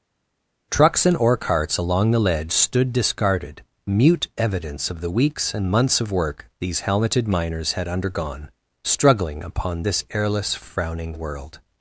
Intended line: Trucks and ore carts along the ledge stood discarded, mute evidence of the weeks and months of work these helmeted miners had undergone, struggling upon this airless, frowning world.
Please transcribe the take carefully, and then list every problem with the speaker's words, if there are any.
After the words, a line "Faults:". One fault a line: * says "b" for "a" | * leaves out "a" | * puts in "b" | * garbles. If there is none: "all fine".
Trucks and ore carts along the ledge stood discarded, mute evidence of the weeks and months of work these helmeted miners had undergone, struggling upon this airless, frowning world.
Faults:
all fine